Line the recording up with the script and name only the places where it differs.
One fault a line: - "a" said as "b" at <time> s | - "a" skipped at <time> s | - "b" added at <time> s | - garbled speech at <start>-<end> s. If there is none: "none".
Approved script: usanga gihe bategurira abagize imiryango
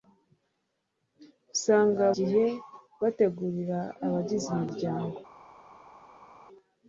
none